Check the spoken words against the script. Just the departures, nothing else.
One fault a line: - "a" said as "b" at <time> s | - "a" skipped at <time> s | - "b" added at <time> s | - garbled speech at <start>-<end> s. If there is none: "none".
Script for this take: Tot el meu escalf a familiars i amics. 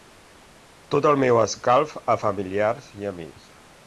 none